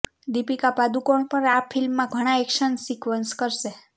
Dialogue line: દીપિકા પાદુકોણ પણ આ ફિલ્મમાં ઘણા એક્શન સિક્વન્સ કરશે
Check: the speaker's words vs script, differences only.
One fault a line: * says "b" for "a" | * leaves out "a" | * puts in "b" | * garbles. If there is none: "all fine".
all fine